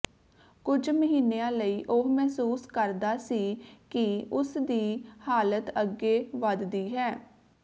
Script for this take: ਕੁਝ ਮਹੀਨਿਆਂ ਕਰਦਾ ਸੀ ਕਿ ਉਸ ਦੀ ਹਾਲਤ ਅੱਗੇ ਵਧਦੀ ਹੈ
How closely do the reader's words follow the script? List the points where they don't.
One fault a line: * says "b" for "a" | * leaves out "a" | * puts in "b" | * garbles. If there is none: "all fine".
* puts in "ਲਈ ਉਹ ਮਹਿਸੂਸ"